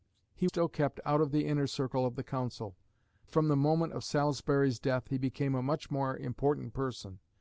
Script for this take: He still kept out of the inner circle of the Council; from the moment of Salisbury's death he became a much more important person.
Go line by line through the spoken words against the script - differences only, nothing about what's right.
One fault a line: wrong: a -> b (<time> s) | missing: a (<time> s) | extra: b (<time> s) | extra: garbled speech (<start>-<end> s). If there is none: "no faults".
no faults